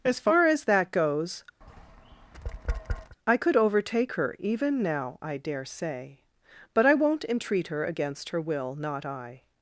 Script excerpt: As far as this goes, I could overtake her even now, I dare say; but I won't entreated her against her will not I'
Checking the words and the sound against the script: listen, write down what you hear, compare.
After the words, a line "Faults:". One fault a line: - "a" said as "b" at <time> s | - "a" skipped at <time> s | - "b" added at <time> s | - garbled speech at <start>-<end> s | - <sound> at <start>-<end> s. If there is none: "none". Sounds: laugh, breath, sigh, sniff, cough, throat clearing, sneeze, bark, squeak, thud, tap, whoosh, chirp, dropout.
As far as that goes, I could overtake her even now, I dare say; but I won't entreat her against her will not I'
Faults:
- "this" said as "that" at 0.6 s
- tap at 1.6-3.2 s
- "entreated" said as "entreat" at 7.3 s